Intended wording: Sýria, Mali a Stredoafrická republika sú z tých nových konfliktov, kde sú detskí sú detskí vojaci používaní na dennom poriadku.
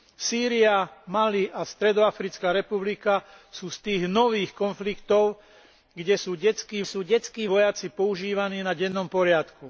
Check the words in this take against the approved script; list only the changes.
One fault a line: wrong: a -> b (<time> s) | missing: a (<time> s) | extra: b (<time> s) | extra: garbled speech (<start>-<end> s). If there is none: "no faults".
no faults